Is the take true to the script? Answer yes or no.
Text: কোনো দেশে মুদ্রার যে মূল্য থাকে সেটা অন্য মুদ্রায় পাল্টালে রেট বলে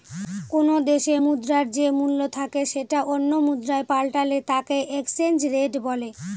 no